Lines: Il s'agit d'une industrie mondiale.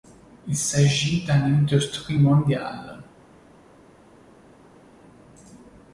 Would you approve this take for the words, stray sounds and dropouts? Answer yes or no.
yes